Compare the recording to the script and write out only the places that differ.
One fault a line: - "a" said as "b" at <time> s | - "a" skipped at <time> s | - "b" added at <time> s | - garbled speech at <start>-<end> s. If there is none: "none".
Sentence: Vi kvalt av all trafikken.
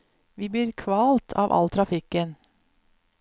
- "blir" added at 0.5 s